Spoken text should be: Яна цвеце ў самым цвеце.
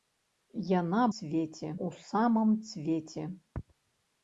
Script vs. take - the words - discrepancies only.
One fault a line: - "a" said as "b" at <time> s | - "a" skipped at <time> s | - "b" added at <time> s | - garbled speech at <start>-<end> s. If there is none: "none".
none